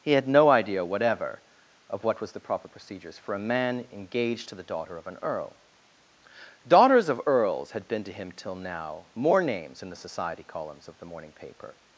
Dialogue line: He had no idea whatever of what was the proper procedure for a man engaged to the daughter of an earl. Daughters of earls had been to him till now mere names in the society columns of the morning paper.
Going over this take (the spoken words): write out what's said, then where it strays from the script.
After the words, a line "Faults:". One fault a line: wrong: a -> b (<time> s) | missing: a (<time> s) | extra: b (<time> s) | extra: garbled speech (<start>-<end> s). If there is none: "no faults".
He had no idea whatever of what was the proper procedures for a man engaged to the daughter of an earl. Daughters of earls had been to him till now more names in the society columns of the morning paper.
Faults:
wrong: procedure -> procedures (2.7 s)
wrong: mere -> more (9.1 s)